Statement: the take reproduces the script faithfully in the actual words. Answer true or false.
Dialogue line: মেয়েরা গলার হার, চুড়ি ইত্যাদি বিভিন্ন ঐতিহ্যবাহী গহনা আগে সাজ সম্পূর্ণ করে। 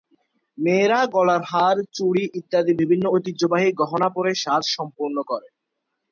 false